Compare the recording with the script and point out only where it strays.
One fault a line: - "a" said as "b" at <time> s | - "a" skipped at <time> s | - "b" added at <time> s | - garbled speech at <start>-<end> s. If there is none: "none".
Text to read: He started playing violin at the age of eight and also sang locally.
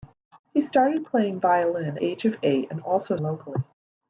- "at the" skipped at 2.0 s
- "sang" skipped at 3.2 s